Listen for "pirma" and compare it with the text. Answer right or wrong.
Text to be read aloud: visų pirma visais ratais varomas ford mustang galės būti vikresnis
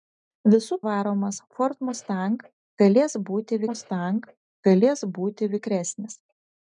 wrong